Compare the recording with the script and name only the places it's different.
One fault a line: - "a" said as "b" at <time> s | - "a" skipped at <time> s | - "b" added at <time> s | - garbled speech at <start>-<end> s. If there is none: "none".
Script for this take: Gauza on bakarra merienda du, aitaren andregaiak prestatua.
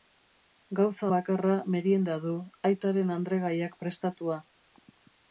- "on" skipped at 1.1 s